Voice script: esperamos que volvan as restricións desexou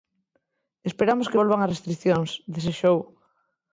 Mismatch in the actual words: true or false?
false